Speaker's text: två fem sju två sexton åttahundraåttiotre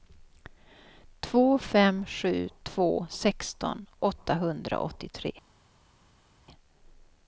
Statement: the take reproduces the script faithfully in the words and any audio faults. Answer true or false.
true